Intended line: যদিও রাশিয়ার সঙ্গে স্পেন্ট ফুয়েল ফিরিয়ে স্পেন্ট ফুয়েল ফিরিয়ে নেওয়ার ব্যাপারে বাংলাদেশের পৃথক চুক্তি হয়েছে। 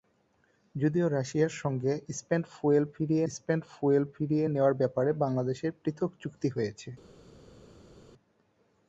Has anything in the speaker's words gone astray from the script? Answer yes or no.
no